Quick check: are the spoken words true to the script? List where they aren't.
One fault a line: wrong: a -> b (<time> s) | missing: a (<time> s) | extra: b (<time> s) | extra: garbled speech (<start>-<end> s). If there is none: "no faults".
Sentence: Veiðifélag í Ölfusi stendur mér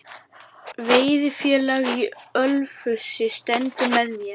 extra: með (4.0 s)